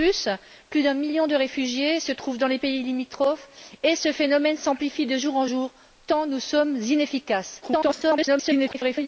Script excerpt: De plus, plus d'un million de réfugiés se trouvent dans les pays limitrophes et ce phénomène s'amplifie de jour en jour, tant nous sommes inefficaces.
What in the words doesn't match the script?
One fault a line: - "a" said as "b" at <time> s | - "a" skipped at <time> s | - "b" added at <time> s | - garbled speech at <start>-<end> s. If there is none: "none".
- garbled speech at 7.6-9.1 s